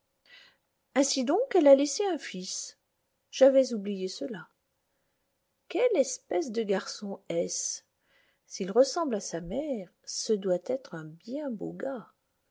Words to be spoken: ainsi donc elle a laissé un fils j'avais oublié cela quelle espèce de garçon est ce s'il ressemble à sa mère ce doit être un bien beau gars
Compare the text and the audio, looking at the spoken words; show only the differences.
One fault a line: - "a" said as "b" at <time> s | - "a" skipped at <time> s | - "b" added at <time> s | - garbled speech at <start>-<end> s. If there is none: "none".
none